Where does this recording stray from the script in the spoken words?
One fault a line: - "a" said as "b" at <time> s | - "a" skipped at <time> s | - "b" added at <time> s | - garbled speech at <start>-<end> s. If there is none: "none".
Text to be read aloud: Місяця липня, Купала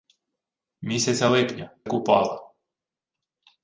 none